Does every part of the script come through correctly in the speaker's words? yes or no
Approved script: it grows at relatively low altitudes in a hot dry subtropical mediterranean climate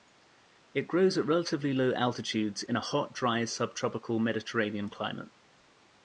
yes